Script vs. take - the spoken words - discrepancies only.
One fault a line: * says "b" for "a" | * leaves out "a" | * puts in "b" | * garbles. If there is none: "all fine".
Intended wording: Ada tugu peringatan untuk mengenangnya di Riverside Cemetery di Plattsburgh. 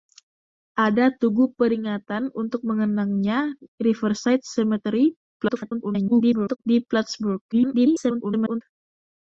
* leaves out "di"
* garbles
* garbles